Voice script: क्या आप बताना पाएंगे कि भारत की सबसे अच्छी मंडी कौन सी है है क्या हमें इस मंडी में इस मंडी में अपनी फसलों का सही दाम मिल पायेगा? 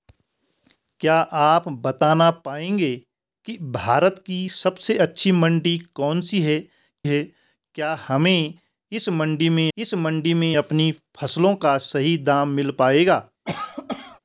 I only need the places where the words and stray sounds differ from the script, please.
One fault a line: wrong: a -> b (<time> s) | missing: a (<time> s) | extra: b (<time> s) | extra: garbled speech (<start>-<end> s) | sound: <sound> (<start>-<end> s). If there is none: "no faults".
sound: cough (13.4-14.2 s)